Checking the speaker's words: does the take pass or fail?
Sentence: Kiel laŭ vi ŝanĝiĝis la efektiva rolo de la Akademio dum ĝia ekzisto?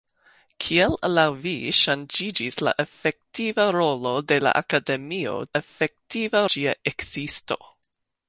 fail